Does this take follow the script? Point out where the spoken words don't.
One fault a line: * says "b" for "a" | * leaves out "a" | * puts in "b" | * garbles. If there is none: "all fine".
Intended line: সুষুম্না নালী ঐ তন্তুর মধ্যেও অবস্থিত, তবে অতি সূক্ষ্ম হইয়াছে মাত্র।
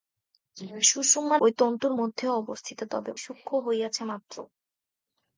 * leaves out "নালী"
* leaves out "অতি"